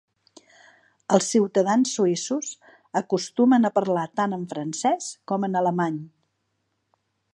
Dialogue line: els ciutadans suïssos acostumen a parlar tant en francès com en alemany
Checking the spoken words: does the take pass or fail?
pass